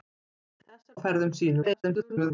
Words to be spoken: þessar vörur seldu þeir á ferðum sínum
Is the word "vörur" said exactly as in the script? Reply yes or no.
no